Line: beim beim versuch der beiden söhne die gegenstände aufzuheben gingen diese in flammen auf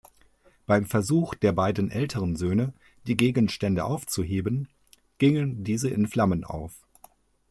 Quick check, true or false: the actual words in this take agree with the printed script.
false